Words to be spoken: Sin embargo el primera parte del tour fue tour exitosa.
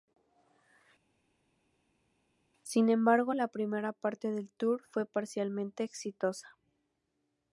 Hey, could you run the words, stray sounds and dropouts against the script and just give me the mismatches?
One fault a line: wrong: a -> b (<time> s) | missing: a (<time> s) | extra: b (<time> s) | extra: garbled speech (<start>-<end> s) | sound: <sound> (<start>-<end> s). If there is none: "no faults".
wrong: el -> la (3.3 s)
wrong: tour -> parcialmente (5.1 s)